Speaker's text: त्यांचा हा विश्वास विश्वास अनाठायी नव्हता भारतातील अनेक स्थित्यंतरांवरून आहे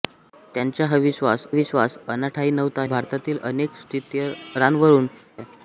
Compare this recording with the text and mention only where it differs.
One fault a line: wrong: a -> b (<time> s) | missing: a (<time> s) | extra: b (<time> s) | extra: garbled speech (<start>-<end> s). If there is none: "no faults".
no faults